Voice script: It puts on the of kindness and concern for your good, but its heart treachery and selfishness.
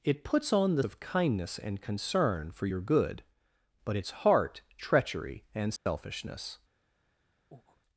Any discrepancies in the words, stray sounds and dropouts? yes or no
yes